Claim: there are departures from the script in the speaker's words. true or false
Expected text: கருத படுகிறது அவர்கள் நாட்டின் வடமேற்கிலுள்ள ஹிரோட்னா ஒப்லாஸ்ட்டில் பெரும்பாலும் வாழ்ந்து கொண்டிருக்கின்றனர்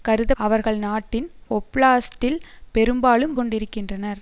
true